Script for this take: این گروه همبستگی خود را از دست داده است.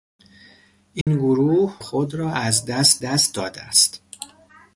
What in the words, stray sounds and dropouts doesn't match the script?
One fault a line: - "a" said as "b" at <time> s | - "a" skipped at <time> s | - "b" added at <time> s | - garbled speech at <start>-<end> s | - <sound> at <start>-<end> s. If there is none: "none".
- dropout at 1.0-1.1 s
- "همبستگی" skipped at 1.8 s
- "دست" added at 3.0 s